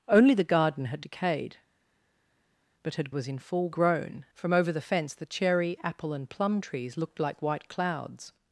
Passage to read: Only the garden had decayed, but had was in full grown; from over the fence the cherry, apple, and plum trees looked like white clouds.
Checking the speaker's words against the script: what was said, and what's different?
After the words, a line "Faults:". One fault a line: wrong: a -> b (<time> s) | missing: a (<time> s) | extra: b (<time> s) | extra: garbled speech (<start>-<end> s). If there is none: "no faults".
Only the garden had decayed, but had was in full grown; from over the fence the cherry, apple, and plum trees looked like white clouds.
Faults:
no faults